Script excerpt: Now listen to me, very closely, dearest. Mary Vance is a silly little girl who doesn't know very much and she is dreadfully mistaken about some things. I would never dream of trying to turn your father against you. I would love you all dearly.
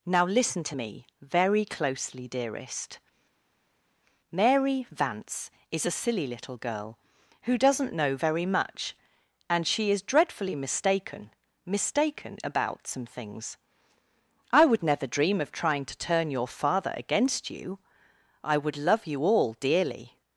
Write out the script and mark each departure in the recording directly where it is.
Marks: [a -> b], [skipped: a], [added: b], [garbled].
Now listen to me, very closely, dearest. Mary Vance is a silly little girl who doesn't know very much and she is dreadfully mistaken [added: mistaken] about some things. I would never dream of trying to turn your father against you. I would love you all dearly.